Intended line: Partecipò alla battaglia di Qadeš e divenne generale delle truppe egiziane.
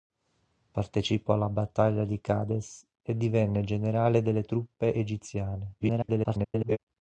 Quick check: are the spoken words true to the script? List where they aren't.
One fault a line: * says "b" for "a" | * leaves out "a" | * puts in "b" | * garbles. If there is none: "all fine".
* garbles